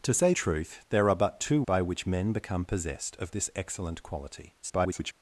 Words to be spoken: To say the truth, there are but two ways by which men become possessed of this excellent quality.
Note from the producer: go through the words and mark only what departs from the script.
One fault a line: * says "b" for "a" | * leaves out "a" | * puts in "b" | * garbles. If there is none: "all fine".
* leaves out "the"
* leaves out "ways"
* garbles